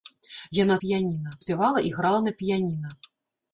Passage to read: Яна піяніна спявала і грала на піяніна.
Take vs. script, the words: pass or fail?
pass